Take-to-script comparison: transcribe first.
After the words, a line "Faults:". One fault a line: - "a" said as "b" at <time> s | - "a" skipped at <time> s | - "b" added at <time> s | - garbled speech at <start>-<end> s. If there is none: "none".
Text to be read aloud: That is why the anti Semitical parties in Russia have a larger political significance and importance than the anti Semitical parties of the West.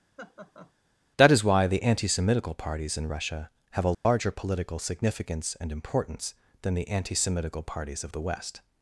That is why the anti Semitical parties in Russia have a larger political significance and importance than the anti Semitical parties of the West.
Faults:
none